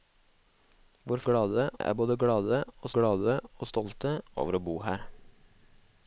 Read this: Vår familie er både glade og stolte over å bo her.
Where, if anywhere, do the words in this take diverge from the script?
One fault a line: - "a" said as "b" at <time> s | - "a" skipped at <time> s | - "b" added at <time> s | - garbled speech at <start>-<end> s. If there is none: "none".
- "familie" said as "glade" at 1.3 s
- "glade og" added at 3.0 s